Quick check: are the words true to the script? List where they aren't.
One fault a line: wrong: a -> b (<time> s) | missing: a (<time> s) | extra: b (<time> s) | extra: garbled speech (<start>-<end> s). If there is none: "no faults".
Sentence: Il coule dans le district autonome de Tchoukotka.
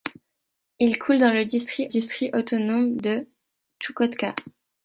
extra: district (1.9 s)